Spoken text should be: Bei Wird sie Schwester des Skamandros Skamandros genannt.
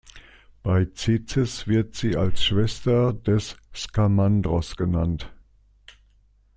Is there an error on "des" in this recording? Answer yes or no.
no